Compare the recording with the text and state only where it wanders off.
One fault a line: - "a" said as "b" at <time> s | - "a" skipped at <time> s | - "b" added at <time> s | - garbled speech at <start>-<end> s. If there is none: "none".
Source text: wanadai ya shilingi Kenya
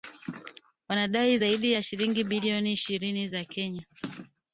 - "zaidi" added at 1.3 s
- "bilioni ishirini za" added at 2.2 s